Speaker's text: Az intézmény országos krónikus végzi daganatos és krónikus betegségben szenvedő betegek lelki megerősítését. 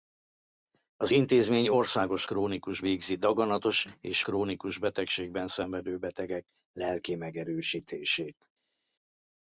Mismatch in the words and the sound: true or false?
false